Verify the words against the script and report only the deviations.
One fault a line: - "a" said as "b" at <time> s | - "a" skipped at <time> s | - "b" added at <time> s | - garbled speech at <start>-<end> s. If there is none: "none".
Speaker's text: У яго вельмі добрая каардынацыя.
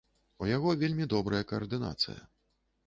none